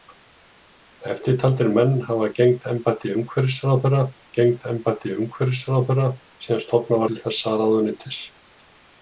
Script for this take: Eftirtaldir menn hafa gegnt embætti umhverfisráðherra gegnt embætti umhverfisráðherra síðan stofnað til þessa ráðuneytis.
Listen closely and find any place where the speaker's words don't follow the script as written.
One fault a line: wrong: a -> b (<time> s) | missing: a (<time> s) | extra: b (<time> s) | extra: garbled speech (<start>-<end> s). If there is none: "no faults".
no faults